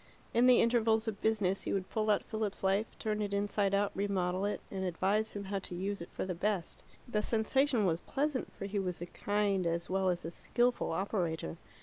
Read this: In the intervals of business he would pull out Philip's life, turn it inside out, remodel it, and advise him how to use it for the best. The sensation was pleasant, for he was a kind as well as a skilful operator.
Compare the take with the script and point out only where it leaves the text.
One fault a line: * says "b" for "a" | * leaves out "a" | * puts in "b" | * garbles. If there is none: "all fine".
all fine